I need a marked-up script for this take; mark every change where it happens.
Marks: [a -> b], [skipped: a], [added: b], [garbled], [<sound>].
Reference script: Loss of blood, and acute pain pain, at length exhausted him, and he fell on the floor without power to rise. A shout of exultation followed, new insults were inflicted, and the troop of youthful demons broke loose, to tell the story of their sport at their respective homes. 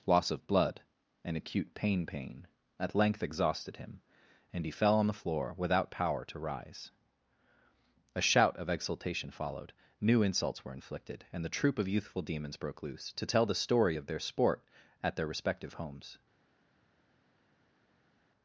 Loss of blood, and acute pain pain, at length exhausted him, and he fell on the floor without power to rise. A shout of exultation followed, new insults were inflicted, and the troop of youthful demons broke loose, to tell the story of their sport at their respective homes.